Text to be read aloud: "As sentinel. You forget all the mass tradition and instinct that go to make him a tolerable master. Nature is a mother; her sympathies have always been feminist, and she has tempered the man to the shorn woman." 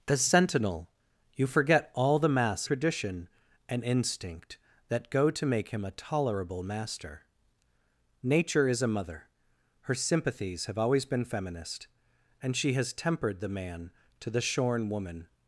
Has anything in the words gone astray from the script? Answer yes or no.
no